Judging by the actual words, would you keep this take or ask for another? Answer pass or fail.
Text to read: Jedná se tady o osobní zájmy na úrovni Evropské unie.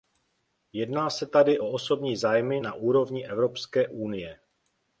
pass